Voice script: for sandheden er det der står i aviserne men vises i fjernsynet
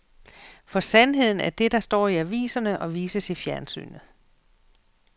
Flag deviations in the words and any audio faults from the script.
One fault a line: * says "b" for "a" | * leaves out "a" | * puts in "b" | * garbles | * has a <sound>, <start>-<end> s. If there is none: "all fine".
* says "og" for "men"